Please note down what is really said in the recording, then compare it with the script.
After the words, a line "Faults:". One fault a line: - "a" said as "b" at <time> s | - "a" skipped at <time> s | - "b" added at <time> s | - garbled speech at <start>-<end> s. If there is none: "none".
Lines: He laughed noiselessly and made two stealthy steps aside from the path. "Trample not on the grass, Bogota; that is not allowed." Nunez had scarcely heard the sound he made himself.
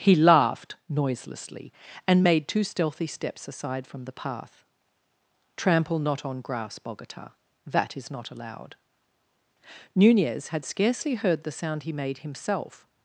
He laughed noiselessly and made two stealthy steps aside from the path. "Trample not on grass, Bogota; that is not allowed." Nunez had scarcely heard the sound he made himself.
Faults:
- "the" skipped at 6.4 s